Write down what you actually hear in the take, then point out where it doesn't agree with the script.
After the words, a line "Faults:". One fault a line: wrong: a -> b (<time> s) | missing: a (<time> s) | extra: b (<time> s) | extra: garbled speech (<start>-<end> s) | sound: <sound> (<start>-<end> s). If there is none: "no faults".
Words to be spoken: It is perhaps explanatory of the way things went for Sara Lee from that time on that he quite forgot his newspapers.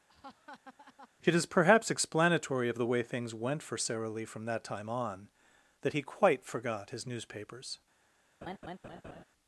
It is perhaps explanatory of the way things went for Sara Lee from that time on that he quite forgot his newspapers.
Faults:
sound: laugh (0.1-1.1 s)
sound: laugh (8.4-9.2 s)